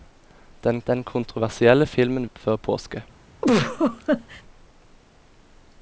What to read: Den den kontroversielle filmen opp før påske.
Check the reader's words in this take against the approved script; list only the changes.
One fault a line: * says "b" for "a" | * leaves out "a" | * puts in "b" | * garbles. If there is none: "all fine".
all fine